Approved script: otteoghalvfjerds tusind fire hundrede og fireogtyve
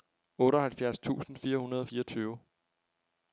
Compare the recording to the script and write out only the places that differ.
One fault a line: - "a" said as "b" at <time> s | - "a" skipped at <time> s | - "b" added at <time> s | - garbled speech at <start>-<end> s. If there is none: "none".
none